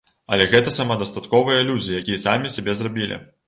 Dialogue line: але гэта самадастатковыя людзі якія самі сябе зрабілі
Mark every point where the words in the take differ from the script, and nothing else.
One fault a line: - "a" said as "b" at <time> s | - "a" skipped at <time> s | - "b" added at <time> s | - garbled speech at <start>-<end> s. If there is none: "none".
none